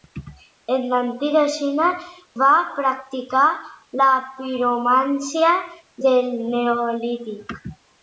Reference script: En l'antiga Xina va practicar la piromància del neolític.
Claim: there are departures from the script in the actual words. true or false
false